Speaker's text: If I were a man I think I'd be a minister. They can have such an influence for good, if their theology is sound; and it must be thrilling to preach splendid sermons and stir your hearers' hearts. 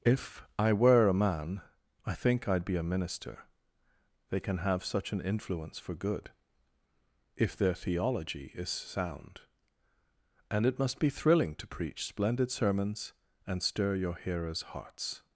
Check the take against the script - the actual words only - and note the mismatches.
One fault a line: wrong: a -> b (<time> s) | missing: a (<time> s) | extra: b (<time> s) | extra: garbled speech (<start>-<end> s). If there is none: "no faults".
no faults